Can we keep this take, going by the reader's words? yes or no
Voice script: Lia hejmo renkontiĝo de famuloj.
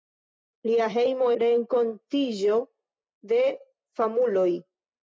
yes